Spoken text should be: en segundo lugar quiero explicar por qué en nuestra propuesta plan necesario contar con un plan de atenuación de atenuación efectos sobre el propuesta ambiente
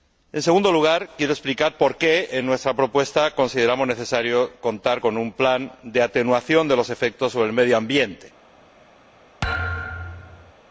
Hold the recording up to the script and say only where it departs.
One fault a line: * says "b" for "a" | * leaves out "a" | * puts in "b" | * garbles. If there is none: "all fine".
* says "consideramos" for "plan"
* says "los" for "atenuación"
* says "medio" for "propuesta"